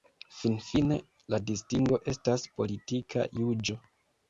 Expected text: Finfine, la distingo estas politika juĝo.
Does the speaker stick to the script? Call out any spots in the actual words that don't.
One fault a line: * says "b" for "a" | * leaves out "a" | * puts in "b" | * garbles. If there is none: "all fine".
all fine